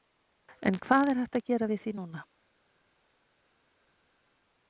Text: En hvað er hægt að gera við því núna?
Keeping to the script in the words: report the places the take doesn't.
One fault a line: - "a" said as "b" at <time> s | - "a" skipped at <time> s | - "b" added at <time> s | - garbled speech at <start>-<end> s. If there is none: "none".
none